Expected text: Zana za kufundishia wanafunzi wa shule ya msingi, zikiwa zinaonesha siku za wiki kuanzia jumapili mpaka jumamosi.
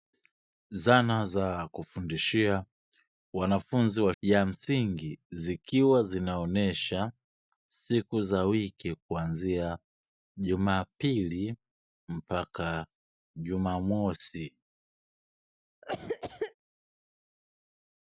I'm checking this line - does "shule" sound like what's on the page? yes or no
no